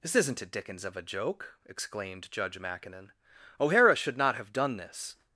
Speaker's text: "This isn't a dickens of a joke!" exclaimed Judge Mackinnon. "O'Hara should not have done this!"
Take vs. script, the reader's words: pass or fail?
pass